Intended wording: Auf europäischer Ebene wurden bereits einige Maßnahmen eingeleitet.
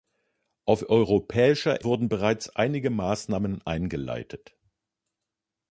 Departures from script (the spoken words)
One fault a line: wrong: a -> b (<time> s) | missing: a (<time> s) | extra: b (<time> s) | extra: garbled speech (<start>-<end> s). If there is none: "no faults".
missing: Ebene (1.8 s)